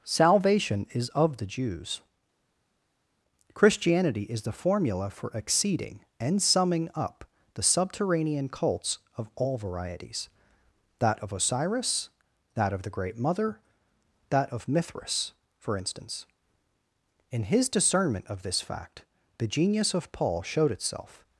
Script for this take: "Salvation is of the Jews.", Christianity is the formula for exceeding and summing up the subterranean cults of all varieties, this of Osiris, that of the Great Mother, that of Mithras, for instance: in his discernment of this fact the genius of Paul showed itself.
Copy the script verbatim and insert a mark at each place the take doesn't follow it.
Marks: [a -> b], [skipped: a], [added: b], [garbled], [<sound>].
"Salvation is of the Jews.", Christianity is the formula for exceeding and summing up the subterranean cults of all varieties, [this -> that] of Osiris, that of the Great Mother, that of Mithras, for instance: in his discernment of this fact the genius of Paul showed itself.